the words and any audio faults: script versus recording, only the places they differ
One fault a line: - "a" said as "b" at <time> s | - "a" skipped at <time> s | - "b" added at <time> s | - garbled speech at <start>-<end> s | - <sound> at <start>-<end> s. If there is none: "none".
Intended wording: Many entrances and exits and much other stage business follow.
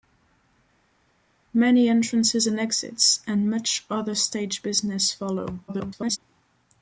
- garbled speech at 5.7-6.2 s